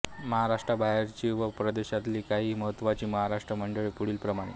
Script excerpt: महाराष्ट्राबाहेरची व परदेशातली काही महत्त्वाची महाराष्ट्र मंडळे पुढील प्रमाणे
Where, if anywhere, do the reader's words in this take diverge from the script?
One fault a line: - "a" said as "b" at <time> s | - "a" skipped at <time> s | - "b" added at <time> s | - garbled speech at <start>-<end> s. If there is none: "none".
none